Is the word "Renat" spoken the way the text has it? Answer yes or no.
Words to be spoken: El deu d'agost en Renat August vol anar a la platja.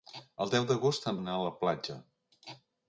no